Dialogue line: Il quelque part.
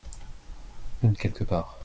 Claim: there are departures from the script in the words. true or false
false